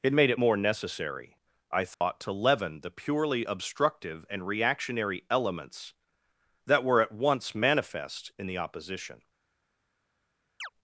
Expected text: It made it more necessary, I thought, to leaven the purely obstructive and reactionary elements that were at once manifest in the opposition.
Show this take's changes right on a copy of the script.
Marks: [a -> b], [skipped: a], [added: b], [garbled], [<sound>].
It made it more necessary, I thought, [dropout] to leaven the purely obstructive and reactionary elements that were at once manifest in the opposition. [chirp]